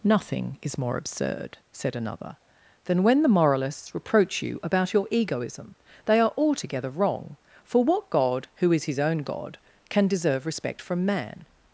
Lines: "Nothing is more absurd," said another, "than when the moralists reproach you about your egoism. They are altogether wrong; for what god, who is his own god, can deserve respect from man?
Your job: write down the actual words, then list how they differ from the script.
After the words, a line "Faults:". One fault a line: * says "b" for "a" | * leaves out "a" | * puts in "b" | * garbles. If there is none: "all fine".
"Nothing is more absurd," said another, "than when the moralists reproach you about your egoism. They are altogether wrong; for what god, who is his own god, can deserve respect from man?
Faults:
all fine